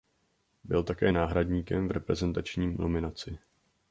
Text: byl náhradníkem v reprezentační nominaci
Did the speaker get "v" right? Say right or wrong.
right